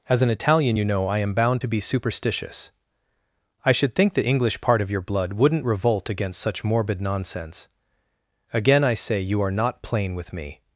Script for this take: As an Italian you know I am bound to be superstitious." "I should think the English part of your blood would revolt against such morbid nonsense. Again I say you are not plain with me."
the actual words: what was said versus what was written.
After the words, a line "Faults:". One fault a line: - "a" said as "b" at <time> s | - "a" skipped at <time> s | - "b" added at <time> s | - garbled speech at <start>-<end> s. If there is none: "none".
As an Italian you know I am bound to be superstitious." "I should think the English part of your blood wouldn't revolt against such morbid nonsense. Again I say you are not plain with me."
Faults:
- "would" said as "wouldn't" at 5.3 s